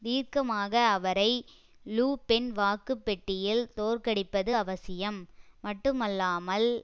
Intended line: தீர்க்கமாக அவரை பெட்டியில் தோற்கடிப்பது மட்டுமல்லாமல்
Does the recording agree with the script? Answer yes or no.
no